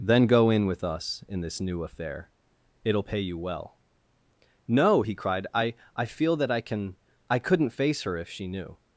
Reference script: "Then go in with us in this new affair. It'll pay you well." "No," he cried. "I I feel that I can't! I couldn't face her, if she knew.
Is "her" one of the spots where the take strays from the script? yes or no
no